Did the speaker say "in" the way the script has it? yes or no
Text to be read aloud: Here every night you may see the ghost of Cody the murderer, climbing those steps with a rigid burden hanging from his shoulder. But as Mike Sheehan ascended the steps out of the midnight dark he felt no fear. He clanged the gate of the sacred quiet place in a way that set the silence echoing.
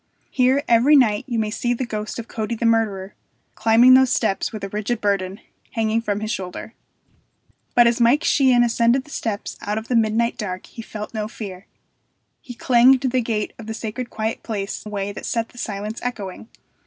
no